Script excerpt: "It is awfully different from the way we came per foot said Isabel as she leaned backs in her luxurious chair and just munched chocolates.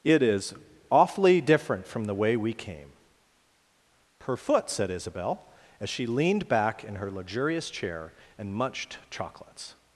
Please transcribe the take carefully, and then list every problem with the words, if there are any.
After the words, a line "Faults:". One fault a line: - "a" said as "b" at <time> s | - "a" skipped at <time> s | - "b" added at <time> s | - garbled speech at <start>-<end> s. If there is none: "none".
"It is awfully different from the way we came per foot said Isabel as she leaned back in her luxurious chair and munched chocolates.
Faults:
- "backs" said as "back" at 6.5 s
- "just" skipped at 8.5 s